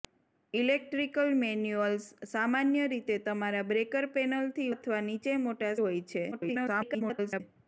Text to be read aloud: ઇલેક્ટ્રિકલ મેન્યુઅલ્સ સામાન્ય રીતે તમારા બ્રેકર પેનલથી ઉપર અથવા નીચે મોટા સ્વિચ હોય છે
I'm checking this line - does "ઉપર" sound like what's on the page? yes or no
no